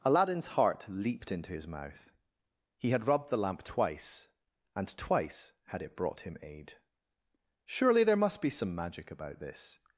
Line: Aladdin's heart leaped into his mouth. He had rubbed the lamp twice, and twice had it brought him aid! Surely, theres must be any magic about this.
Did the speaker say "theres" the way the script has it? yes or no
no